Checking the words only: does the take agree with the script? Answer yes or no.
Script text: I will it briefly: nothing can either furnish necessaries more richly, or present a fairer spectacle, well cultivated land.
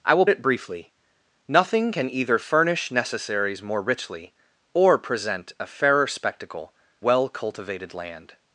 yes